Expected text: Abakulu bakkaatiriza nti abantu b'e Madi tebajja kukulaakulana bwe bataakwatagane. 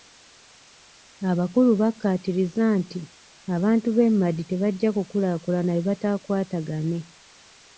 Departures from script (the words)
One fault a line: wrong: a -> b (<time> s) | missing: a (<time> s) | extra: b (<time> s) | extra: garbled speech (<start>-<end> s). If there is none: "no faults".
no faults